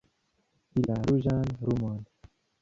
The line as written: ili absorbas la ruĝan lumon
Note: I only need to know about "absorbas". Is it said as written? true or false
false